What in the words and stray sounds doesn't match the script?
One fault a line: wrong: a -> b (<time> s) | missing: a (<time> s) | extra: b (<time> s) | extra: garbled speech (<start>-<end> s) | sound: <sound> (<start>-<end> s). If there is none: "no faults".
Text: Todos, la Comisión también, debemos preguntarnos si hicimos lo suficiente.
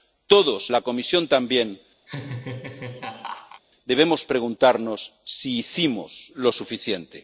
sound: laugh (2.1-3.6 s)